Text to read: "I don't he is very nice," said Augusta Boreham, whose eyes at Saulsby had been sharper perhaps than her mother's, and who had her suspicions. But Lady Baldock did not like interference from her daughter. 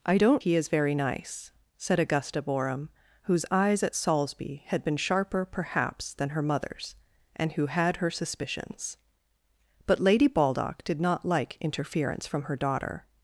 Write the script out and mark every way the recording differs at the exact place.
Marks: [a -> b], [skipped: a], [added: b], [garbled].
"I don't he is very nice," said Augusta Boreham, whose eyes at Saulsby had been sharper perhaps than her mother's, and who had her suspicions. But Lady Baldock did not like interference from her daughter.